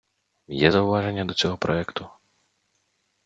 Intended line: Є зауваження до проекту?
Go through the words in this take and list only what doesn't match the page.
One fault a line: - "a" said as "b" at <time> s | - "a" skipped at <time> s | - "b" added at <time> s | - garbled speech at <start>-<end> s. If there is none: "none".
- "цього" added at 1.3 s